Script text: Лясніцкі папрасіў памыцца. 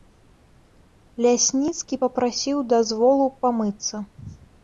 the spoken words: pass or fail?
fail